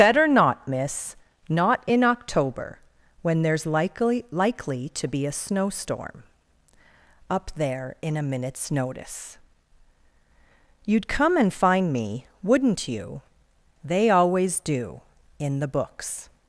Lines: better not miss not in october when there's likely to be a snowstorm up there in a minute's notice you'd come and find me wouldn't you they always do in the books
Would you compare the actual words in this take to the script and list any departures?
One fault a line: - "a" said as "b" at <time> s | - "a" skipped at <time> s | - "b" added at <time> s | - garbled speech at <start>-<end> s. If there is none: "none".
- "likely" added at 4.3 s